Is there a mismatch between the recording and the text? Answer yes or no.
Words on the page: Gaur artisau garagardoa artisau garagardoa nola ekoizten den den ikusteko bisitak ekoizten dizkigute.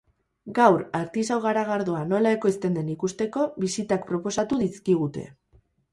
yes